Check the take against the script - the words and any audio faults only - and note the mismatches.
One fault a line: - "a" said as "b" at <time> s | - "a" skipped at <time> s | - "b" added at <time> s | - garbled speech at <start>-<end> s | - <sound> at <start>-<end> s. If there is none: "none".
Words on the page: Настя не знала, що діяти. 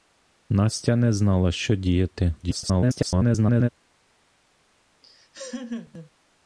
- garbled speech at 2.4-3.7 s
- laugh at 5.0-6.1 s